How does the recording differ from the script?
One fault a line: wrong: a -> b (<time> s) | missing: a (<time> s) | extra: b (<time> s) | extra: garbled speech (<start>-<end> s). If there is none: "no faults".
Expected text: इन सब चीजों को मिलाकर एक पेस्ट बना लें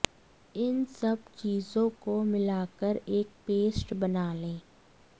no faults